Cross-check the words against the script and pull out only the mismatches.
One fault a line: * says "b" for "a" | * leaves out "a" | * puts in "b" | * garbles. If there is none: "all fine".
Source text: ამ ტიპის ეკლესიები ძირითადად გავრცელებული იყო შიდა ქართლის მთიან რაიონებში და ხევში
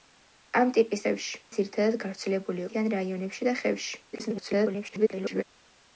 * says "ხევში" for "ეკლესიები"
* leaves out "იყო შიდა ქართლის"
* garbles